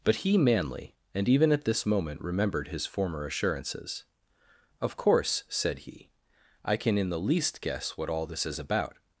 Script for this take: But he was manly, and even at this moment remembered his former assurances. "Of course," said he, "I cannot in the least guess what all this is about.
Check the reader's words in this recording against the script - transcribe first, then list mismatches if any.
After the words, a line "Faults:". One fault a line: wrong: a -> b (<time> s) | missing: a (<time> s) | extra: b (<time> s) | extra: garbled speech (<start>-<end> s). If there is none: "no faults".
But he manly, and even at this moment remembered his former assurances. "Of course," said he, "I can in the least guess what all this is about.
Faults:
missing: was (0.4 s)
wrong: cannot -> can (6.8 s)